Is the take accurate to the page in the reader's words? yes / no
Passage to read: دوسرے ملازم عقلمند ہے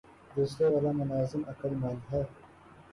no